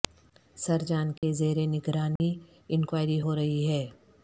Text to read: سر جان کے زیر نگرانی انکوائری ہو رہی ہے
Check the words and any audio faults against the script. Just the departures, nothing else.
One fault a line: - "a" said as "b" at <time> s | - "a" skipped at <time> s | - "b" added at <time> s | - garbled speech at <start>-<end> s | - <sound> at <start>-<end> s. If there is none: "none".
- dropout at 1.2-1.2 s
- dropout at 2.2-2.2 s